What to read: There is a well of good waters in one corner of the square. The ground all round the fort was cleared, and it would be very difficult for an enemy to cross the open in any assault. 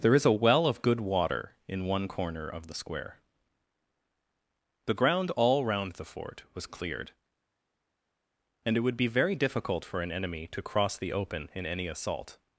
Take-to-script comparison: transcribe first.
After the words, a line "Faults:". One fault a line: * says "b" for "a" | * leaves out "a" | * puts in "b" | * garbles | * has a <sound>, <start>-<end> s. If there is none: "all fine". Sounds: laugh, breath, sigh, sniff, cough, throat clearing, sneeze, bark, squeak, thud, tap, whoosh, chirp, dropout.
There is a well of good water in one corner of the square. The ground all round the fort was cleared, and it would be very difficult for an enemy to cross the open in any assault.
Faults:
* says "water" for "waters"